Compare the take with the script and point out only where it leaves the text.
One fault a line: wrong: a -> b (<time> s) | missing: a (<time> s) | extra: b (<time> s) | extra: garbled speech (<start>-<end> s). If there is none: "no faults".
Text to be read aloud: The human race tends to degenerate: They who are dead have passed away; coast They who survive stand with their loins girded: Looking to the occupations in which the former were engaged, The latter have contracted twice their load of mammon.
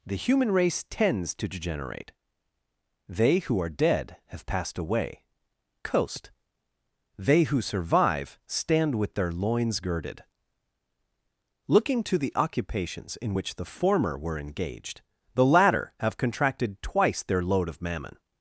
no faults